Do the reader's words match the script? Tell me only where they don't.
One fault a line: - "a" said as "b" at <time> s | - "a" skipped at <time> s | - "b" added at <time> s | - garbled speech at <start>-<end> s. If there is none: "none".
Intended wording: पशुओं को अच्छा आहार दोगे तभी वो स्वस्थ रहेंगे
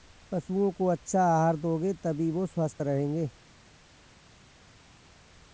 none